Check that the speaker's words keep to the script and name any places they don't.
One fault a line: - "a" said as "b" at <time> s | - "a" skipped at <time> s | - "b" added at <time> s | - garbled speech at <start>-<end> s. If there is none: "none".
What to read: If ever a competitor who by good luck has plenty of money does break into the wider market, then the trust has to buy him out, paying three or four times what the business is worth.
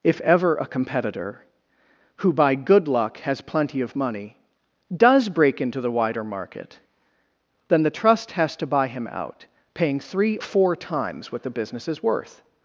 - "or" skipped at 10.4 s